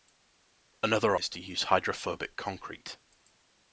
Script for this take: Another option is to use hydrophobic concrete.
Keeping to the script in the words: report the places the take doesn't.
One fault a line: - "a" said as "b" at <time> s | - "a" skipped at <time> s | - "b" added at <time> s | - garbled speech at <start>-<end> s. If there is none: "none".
- "option" skipped at 1.1 s